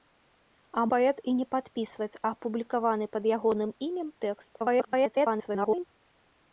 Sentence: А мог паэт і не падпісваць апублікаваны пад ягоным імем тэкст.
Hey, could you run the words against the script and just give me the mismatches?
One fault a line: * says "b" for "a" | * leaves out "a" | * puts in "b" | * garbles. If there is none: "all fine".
* leaves out "мог"
* garbles